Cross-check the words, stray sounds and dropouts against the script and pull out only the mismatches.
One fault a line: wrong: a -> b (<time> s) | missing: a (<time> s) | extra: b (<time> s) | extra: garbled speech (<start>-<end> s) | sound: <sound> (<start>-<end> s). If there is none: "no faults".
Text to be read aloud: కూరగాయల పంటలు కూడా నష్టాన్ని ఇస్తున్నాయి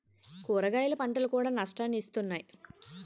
no faults